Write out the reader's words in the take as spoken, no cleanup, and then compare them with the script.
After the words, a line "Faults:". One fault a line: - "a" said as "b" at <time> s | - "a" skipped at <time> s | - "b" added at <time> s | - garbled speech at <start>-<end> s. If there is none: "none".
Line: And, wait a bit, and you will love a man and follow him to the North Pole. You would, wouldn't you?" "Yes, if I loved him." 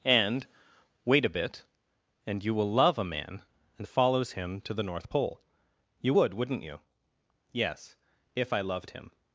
And, wait a bit, and you will love a man and follows him to the North Pole. You would, wouldn't you?" "Yes, if I loved him."
Faults:
- "follow" said as "follows" at 3.9 s